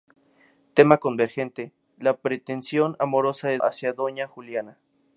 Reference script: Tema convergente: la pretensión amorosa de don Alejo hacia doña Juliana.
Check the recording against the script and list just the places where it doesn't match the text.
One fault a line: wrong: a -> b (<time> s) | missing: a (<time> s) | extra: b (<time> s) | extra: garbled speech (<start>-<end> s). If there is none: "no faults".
missing: don Alejo (3.6 s)